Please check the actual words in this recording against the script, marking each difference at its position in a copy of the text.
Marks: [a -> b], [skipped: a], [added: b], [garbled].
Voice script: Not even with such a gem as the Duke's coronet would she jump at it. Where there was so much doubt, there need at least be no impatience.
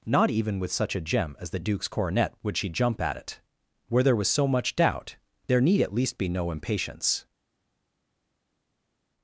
Not even with such a gem as the Duke's coronet would she jump at it. Where there was so much doubt, there need at least be no impatience.